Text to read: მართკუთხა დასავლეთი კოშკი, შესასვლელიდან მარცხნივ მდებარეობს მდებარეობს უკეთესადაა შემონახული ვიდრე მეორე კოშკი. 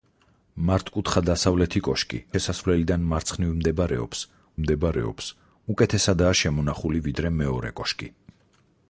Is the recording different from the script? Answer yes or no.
no